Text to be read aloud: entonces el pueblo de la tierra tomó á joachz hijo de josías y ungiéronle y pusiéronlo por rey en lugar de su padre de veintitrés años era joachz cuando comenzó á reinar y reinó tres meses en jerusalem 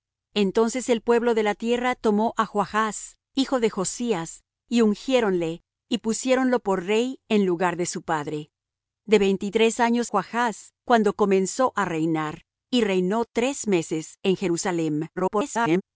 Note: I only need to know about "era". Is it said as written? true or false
false